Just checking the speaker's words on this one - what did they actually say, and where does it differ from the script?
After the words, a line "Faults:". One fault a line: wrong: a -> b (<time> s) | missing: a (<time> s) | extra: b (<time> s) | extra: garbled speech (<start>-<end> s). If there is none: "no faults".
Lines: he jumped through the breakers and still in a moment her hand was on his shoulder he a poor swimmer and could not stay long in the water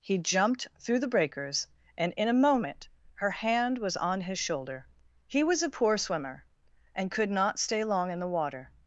he jumped through the breakers and in a moment her hand was on his shoulder he was a poor swimmer and could not stay long in the water
Faults:
missing: still (2.1 s)
extra: was (5.4 s)